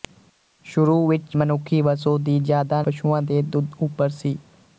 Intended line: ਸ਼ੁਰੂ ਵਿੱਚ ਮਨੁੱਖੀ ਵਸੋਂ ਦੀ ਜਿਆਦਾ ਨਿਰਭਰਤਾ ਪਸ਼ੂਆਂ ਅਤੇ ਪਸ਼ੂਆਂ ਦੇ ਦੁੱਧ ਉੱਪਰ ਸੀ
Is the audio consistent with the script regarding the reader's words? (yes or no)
no